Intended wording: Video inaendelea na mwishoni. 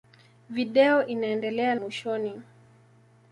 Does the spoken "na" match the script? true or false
false